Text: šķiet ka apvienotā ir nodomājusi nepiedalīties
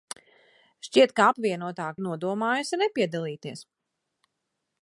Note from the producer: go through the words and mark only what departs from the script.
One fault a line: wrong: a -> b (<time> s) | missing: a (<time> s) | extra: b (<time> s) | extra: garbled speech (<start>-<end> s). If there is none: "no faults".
no faults